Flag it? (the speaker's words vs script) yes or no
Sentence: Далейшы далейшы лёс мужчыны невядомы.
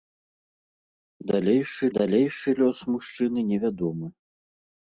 no